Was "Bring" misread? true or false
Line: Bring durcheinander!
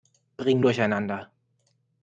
false